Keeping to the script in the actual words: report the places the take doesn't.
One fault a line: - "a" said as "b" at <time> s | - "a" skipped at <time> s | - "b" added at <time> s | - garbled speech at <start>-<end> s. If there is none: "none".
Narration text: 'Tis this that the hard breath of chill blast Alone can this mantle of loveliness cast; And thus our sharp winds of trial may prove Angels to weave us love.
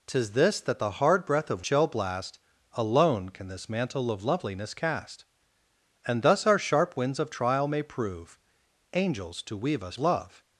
none